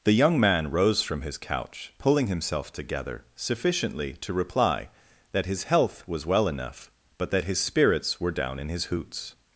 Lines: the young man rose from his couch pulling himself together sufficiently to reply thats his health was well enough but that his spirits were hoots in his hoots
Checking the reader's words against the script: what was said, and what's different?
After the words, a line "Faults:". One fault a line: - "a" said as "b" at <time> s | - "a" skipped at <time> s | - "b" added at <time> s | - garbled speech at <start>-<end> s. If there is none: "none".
the young man rose from his couch pulling himself together sufficiently to reply that his health was well enough but that his spirits were down in his hoots
Faults:
- "thats" said as "that" at 5.3 s
- "hoots" said as "down" at 8.3 s